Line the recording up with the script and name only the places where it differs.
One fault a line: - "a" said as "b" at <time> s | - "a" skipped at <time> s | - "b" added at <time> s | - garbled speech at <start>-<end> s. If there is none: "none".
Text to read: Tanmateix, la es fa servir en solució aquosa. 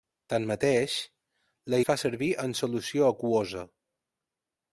none